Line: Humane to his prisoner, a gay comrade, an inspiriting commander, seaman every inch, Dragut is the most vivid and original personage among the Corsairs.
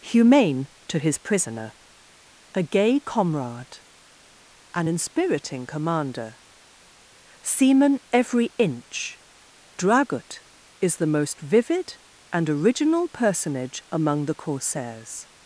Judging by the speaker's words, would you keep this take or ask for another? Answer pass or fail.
pass